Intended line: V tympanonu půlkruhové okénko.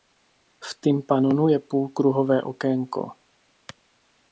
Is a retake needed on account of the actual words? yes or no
yes